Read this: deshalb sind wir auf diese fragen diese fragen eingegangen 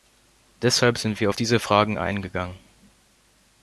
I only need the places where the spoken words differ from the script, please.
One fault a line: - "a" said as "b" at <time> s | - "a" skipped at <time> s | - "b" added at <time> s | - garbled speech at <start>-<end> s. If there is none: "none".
- "diese fragen" skipped at 2.0 s